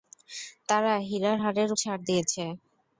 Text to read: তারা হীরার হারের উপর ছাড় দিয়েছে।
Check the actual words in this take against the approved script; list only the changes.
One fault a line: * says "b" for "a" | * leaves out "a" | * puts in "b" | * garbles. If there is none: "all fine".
* leaves out "উপর"